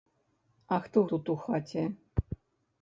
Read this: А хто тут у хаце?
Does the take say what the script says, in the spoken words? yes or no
yes